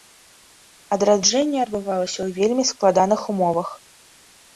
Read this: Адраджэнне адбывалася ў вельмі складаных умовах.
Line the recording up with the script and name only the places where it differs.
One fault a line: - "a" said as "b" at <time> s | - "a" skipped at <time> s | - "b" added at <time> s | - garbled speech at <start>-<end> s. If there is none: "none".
none